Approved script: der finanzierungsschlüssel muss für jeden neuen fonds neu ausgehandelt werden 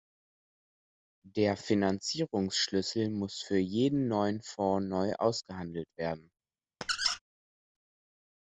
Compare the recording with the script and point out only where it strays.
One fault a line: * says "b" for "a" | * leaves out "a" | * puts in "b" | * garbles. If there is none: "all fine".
all fine